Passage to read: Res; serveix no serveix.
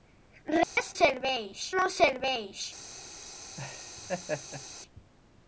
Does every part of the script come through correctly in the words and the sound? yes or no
no